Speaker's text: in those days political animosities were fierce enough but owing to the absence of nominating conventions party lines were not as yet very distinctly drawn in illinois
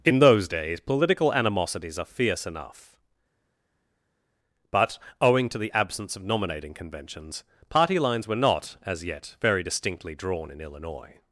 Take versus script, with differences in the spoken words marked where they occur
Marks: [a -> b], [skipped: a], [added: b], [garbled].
in those days political animosities [were -> are] fierce enough but owing to the absence of nominating conventions party lines were not as yet very distinctly drawn in illinois